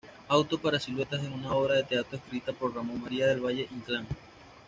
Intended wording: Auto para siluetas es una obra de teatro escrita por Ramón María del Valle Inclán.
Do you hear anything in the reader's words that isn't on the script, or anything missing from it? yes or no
no